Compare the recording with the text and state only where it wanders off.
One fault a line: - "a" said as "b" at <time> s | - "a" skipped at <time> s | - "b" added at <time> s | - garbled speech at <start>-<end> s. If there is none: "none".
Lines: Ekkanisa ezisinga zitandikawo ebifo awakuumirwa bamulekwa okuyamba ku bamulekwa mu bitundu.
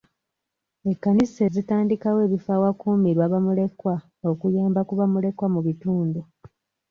- "ezisinga" skipped at 1.4 s